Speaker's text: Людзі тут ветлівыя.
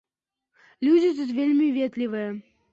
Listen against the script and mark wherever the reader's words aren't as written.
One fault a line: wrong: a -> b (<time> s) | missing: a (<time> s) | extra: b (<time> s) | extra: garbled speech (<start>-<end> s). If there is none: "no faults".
extra: вельмі (1.4 s)